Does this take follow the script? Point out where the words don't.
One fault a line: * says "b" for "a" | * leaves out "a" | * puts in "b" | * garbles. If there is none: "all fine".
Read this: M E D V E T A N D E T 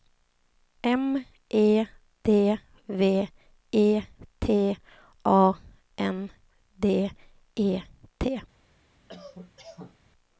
all fine